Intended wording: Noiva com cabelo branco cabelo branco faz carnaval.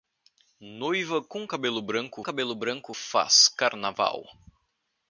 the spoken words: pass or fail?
pass